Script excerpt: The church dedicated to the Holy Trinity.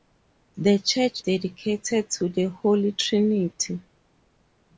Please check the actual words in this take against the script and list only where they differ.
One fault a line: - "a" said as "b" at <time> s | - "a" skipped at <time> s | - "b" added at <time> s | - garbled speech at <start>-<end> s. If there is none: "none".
none